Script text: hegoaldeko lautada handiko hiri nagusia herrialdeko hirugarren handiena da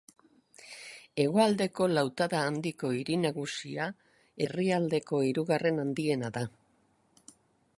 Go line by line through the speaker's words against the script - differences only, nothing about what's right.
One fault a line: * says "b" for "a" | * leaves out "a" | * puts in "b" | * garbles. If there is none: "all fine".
all fine